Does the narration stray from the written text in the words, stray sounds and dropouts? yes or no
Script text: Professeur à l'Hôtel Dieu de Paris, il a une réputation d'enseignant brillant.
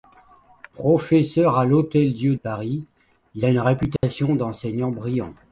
yes